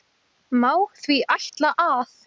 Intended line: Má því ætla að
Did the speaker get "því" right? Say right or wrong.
right